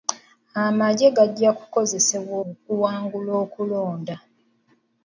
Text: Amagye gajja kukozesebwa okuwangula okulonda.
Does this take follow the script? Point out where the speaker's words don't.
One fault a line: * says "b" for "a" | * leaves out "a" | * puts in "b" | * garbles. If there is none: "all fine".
all fine